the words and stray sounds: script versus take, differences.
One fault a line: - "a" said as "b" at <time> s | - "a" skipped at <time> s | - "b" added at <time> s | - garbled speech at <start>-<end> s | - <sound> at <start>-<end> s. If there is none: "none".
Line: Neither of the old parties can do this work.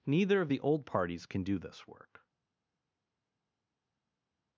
none